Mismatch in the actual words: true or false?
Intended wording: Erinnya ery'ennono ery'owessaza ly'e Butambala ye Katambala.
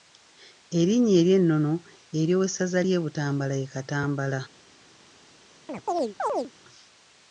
false